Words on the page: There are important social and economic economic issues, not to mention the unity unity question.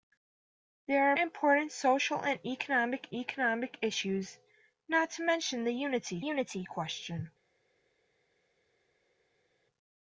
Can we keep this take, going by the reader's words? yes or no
yes